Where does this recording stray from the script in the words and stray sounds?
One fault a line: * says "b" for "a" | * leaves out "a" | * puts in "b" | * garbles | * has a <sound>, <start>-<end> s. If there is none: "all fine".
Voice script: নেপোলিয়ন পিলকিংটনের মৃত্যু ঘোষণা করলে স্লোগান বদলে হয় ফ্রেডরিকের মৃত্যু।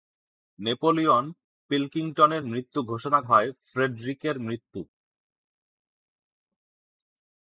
* leaves out "করলে স্লোগান বদলে"